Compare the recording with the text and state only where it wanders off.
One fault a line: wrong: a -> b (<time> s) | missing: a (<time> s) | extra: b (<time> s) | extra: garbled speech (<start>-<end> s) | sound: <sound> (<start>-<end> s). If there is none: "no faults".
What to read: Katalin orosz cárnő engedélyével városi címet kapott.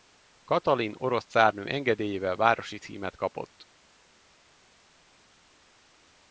no faults